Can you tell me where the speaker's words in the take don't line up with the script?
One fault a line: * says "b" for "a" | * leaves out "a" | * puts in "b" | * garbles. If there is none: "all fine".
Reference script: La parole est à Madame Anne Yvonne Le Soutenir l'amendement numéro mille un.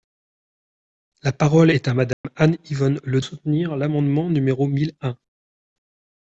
all fine